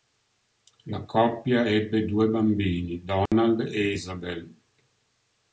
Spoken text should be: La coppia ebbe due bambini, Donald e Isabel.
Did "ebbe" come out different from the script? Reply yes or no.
no